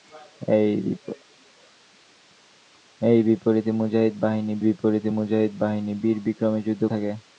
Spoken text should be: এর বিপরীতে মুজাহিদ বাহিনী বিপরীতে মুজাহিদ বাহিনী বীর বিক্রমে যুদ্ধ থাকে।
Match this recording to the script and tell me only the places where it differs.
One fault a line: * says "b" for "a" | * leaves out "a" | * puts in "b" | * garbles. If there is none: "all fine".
all fine